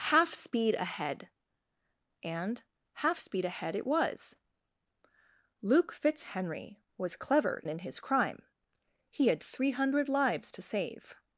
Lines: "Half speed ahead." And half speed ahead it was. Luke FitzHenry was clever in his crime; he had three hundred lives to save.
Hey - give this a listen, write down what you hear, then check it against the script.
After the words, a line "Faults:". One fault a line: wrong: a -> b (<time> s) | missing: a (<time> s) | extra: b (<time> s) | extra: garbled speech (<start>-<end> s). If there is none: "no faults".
"Half speed ahead." And half speed ahead it was. Luke FitzHenry was clever in his crime; he had three hundred lives to save.
Faults:
no faults